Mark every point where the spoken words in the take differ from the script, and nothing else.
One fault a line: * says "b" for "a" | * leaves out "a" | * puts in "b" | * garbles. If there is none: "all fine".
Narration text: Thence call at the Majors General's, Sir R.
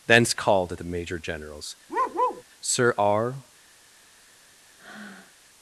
* says "called" for "call"
* says "Major" for "Majors"